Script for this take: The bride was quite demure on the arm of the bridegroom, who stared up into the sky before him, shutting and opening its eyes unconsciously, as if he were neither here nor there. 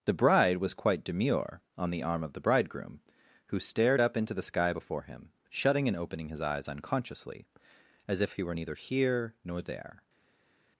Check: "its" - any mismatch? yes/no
yes